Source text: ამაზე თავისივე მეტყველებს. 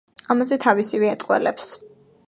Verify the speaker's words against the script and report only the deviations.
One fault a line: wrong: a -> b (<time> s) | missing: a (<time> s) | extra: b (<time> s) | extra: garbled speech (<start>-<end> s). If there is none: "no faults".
no faults